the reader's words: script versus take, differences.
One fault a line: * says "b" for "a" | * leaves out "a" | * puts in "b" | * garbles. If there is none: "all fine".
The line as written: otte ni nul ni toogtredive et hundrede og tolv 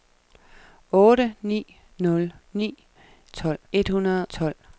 * says "tolv" for "toogtredive"
* leaves out "og"